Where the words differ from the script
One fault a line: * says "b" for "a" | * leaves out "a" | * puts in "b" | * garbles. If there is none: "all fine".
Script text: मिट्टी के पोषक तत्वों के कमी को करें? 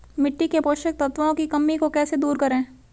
* says "की" for "के"
* puts in "कैसे दूर"